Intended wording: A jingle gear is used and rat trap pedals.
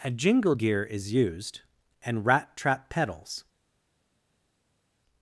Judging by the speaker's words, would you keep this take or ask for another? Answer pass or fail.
pass